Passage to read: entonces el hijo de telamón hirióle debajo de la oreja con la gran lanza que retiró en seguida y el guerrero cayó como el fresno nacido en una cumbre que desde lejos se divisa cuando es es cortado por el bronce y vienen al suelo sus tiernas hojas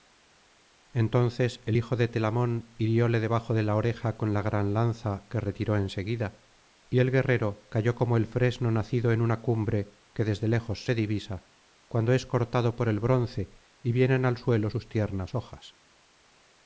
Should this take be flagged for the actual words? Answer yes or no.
yes